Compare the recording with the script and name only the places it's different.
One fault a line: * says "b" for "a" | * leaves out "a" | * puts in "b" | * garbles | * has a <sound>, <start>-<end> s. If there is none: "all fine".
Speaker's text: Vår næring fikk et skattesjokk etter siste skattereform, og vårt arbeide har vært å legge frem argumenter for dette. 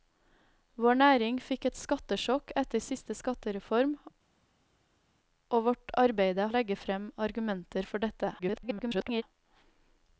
* leaves out "har vært"
* garbles